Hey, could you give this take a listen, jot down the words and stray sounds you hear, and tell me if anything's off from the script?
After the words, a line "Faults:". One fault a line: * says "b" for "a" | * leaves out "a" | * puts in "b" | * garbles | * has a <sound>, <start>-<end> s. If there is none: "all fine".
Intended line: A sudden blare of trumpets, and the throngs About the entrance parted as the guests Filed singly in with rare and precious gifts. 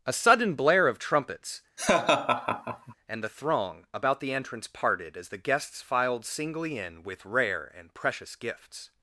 A sudden blare of trumpets, and the throng About the entrance parted as the guests Filed singly in with rare and precious gifts.
Faults:
* has a laugh, 1.8-2.9 s
* says "throng" for "throngs"